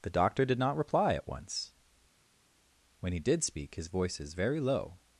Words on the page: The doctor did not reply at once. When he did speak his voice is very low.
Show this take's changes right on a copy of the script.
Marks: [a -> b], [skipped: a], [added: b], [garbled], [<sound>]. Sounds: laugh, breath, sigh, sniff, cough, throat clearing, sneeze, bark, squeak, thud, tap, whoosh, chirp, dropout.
The doctor did not reply at once. When he did speak his voice is very low.